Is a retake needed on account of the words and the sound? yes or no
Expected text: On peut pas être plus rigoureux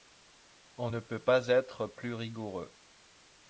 yes